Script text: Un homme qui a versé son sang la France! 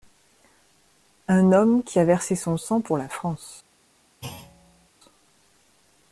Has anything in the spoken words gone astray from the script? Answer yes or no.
yes